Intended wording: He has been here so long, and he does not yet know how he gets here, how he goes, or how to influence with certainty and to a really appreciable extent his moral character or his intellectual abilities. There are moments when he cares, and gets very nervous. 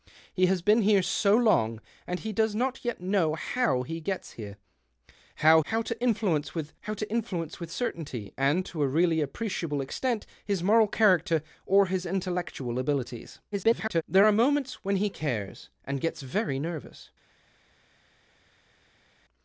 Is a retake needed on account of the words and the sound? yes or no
yes